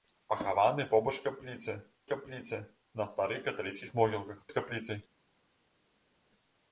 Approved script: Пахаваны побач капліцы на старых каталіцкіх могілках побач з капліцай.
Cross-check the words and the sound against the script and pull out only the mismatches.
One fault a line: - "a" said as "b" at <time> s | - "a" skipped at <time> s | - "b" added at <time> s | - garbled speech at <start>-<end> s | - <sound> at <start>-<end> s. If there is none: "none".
- "капліцы" added at 2.1 s
- "побач" skipped at 4.4 s